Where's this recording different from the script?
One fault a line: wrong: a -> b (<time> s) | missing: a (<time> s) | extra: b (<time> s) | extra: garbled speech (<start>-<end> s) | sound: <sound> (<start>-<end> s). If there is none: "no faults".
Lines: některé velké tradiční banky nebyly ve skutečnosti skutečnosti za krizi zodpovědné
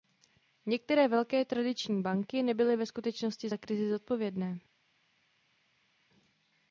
missing: skutečnosti (3.5 s)